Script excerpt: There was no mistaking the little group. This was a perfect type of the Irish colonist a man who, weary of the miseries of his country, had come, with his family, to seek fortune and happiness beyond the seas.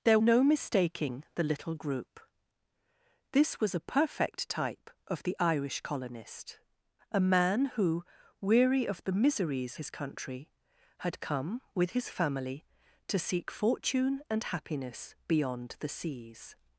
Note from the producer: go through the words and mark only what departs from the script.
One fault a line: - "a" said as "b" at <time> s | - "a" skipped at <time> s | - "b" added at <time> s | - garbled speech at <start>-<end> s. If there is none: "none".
- "was" skipped at 0.2 s
- "of" skipped at 9.8 s